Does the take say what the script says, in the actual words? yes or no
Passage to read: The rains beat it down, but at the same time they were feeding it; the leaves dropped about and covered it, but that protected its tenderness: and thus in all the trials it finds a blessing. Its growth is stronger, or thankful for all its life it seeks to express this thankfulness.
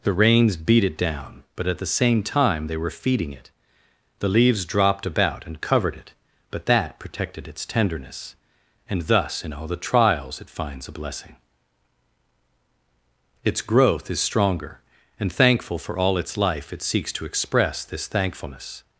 no